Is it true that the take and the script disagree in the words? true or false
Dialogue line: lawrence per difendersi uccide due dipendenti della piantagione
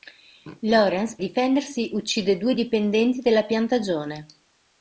true